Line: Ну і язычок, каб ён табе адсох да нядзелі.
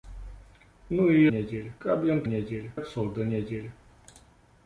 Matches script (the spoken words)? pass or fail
fail